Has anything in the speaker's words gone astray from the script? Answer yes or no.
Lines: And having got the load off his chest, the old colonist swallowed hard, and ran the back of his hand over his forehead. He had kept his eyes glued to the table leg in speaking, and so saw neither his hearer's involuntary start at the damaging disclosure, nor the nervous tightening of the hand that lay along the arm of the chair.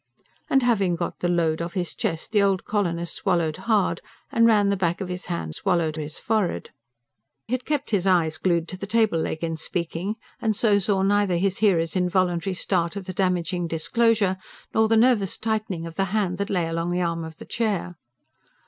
yes